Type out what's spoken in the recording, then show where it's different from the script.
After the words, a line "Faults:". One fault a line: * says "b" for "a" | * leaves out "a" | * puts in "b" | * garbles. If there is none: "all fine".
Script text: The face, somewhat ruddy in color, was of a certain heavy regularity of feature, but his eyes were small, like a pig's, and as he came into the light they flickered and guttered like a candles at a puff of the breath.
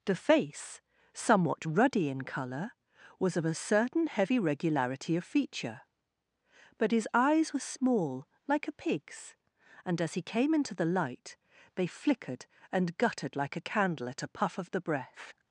The face, somewhat ruddy in color, was of a certain heavy regularity of feature, but his eyes were small, like a pig's, and as he came into the light they flickered and guttered like a candle at a puff of the breath.
Faults:
* says "candle" for "candles"